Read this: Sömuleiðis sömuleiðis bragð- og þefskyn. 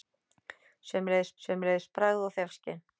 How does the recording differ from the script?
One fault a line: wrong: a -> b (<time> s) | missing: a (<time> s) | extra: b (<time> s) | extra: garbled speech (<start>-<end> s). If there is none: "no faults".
no faults